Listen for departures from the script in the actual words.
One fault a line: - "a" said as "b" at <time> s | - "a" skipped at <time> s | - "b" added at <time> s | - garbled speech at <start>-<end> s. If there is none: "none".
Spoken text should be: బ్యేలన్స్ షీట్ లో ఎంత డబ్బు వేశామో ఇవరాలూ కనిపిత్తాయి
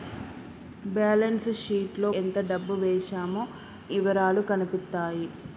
none